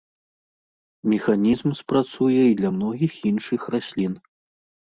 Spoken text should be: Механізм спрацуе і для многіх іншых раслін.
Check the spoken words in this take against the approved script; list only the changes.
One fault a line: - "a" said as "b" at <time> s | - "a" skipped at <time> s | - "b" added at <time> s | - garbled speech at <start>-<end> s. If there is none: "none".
none